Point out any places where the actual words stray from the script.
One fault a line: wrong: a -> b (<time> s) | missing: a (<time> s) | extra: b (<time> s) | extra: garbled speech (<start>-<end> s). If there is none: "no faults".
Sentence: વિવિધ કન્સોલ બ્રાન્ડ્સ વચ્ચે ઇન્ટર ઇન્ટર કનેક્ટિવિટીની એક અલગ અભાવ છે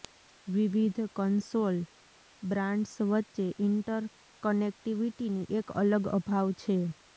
missing: ઇન્ટર (4.1 s)